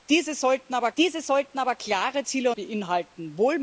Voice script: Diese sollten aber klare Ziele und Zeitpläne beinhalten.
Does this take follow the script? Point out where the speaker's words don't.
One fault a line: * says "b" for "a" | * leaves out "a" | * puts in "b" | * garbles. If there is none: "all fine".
* puts in "diese sollten aber"
* leaves out "und Zeitpläne"